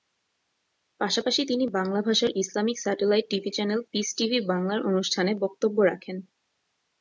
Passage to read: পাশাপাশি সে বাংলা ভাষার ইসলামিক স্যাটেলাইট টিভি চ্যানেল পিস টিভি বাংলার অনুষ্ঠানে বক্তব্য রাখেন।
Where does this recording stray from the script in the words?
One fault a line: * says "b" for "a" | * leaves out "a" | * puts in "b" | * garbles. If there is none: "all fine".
* says "তিনি" for "সে"